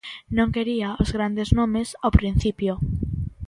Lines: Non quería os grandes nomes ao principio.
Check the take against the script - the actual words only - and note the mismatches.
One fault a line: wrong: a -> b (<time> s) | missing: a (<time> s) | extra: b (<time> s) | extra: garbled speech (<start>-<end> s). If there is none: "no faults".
no faults